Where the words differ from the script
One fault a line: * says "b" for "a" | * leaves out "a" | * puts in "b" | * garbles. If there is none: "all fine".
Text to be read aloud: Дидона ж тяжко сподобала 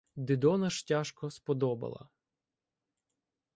all fine